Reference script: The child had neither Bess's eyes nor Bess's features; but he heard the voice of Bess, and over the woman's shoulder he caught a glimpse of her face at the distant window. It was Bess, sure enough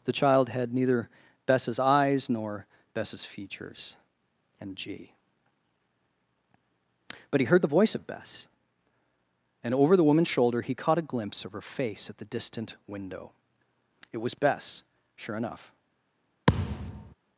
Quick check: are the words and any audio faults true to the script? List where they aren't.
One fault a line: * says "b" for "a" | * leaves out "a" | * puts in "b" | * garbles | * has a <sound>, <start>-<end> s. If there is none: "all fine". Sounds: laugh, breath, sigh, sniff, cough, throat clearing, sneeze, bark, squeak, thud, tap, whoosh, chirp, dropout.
* puts in "and g"
* has a thud, 16.5-17.1 s